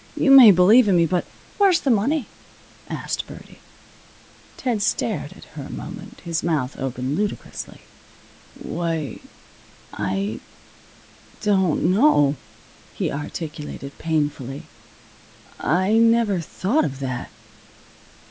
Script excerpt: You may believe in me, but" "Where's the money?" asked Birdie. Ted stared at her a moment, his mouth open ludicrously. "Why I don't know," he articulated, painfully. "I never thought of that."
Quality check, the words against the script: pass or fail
pass